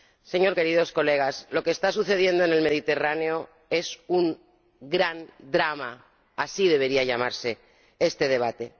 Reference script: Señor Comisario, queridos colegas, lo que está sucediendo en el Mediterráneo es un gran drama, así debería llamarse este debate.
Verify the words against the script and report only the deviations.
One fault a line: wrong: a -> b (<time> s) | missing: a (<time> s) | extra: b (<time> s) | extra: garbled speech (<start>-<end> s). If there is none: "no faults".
missing: Comisario (0.6 s)